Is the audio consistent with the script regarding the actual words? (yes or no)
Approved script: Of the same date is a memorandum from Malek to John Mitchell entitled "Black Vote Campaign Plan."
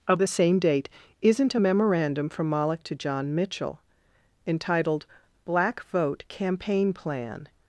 no